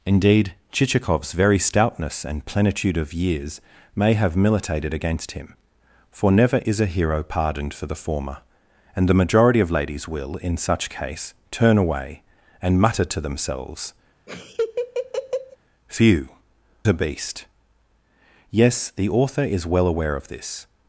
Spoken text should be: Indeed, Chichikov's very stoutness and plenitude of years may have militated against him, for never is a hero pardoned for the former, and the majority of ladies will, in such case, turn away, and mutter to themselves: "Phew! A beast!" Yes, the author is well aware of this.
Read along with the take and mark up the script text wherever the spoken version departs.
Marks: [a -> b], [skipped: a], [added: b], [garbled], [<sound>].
Indeed, Chichikov's very stoutness and plenitude of years may have militated against him, for never is a hero pardoned for the former, and the majority of ladies will, in such case, turn away, and mutter to themselves: [laugh] "Phew! A beast!" Yes, the author is well aware of this.